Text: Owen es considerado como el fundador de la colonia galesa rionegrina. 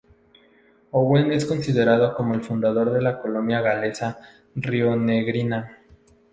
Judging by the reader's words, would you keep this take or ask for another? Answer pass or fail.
pass